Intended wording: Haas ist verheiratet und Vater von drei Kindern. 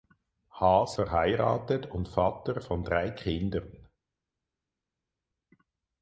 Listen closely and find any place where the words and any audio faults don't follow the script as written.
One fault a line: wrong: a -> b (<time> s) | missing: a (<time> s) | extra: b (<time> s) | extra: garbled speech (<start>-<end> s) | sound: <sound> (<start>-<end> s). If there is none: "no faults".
missing: ist (1.0 s)